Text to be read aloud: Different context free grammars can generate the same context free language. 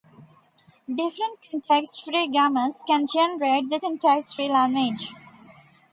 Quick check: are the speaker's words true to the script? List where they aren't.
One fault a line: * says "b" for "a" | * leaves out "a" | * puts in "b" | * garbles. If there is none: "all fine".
* leaves out "same"